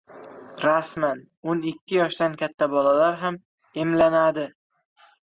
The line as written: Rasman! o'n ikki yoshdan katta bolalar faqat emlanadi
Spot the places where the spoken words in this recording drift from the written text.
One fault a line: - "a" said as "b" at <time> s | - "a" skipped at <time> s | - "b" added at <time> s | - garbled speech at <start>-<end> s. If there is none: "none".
- "faqat" said as "ham" at 3.2 s